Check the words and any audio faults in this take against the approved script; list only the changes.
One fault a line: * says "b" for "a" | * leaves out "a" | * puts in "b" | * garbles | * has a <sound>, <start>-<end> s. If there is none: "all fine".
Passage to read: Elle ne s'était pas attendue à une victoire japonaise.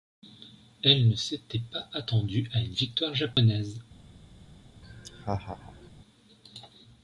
* has a dropout, 3.3-3.4 s
* has a laugh, 4.8-5.9 s